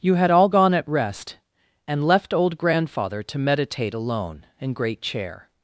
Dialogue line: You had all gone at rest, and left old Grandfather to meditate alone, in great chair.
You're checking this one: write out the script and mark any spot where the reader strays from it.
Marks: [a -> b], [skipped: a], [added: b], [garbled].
You had all gone at rest, and left old Grandfather to meditate alone, in great chair.